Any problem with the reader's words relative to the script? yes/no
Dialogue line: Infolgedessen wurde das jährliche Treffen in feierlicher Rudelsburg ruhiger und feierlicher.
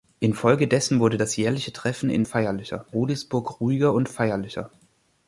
no